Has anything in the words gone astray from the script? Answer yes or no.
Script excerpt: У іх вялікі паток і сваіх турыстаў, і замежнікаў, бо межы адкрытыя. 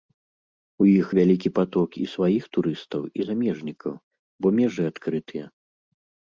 no